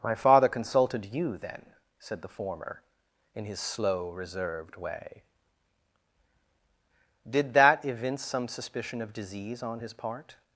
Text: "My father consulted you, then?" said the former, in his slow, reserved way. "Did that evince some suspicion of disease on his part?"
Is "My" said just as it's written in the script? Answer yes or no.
yes